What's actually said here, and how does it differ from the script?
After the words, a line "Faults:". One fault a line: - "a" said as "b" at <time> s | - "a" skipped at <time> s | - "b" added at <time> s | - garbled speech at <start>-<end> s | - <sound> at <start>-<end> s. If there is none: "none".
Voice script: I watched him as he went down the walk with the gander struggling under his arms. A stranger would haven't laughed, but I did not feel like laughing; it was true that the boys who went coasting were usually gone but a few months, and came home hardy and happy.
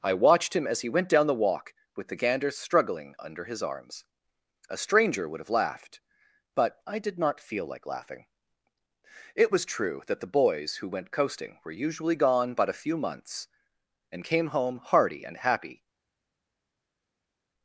I watched him as he went down the walk with the gander struggling under his arms. A stranger would have laughed, but I did not feel like laughing; it was true that the boys who went coasting were usually gone but a few months, and came home hardy and happy.
Faults:
- "haven't" said as "have" at 5.4 s